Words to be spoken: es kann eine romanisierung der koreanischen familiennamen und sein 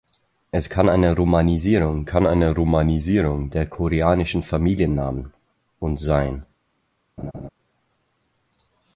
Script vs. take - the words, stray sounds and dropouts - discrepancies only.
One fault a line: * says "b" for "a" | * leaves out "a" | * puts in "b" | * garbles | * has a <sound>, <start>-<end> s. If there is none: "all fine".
* puts in "kann eine romanisierung"
* has a laugh, 7.2-7.5 s